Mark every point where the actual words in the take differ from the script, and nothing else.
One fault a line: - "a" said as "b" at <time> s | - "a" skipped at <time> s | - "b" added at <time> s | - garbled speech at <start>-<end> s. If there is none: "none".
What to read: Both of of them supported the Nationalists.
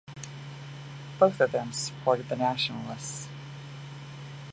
- "of" skipped at 1.5 s